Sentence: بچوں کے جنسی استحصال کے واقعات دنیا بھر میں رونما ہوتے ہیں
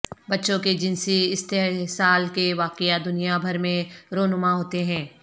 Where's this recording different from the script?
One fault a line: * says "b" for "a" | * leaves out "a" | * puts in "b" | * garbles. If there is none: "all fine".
all fine